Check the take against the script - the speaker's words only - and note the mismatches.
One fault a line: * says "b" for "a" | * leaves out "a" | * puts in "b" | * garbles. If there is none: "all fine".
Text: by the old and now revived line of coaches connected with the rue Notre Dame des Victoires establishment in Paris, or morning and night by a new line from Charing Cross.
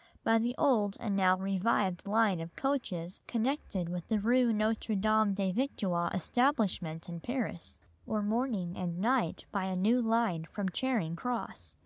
all fine